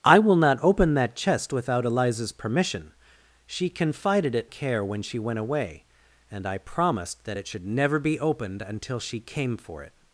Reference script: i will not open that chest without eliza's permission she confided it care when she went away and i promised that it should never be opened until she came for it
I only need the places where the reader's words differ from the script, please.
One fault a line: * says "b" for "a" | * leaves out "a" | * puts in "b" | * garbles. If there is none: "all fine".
all fine